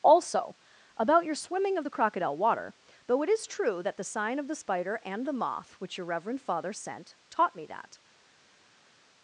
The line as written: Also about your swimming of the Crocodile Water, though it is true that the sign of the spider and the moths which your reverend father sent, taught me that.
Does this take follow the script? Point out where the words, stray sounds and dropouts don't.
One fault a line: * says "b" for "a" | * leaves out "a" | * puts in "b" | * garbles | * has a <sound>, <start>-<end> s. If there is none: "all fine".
* says "moth" for "moths"